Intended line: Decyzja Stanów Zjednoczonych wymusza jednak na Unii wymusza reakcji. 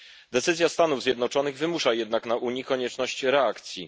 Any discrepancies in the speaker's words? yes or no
yes